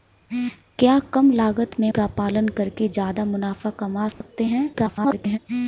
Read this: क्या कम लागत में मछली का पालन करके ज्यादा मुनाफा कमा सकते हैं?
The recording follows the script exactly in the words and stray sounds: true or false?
false